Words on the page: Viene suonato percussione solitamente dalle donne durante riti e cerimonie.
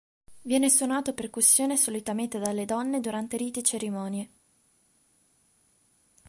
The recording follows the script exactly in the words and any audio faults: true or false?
true